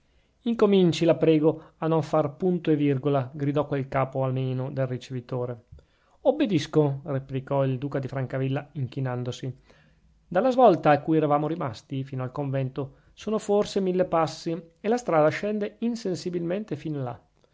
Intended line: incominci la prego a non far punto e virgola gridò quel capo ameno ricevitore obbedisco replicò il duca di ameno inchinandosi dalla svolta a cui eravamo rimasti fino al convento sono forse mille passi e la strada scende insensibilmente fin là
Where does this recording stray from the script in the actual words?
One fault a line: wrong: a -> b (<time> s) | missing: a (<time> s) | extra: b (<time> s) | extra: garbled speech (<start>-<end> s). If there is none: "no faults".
extra: del (4.7 s)
wrong: ameno -> francavilla (8.1 s)